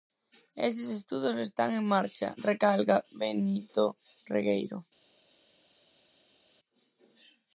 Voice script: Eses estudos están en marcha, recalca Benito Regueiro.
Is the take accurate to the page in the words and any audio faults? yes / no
yes